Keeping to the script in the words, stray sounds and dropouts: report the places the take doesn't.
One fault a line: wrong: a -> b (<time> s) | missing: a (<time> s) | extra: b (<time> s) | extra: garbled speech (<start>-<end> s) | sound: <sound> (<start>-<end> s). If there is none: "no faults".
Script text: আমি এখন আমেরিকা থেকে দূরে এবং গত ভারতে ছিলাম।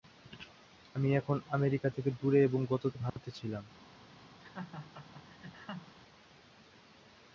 sound: dropout (3.1-3.2 s)
sound: laugh (4.4-5.9 s)